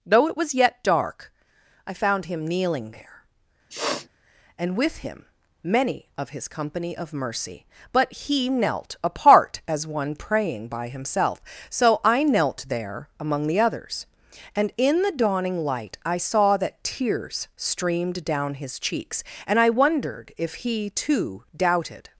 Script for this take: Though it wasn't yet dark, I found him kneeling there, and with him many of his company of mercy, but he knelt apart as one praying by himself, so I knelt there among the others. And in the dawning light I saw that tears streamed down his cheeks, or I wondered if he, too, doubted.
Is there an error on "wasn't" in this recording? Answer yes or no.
yes